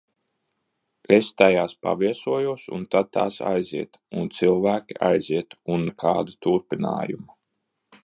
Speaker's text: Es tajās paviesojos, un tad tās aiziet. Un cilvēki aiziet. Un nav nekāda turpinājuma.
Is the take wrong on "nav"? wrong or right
wrong